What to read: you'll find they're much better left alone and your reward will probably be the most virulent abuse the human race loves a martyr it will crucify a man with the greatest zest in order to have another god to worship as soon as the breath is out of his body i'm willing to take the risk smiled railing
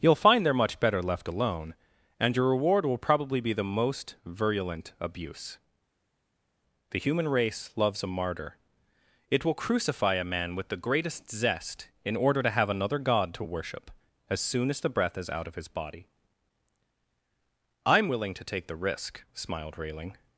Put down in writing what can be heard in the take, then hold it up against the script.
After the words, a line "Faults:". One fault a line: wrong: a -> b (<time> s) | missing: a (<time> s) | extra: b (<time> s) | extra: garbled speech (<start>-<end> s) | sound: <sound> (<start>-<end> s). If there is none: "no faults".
you'll find they're much better left alone and your reward will probably be the most virulent abuse the human race loves a martyr it will crucify a man with the greatest zest in order to have another god to worship as soon as the breath is out of his body i'm willing to take the risk smiled railing
Faults:
no faults